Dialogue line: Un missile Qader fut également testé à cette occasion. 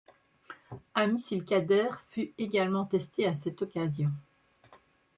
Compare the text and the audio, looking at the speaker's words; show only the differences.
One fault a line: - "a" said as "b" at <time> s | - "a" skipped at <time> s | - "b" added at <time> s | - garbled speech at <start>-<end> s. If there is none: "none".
none